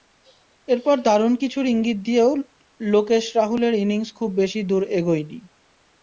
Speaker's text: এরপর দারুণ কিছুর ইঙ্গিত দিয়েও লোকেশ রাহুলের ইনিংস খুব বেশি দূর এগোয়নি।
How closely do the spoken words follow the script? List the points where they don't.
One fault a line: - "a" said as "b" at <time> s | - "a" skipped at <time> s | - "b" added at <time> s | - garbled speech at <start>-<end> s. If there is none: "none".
none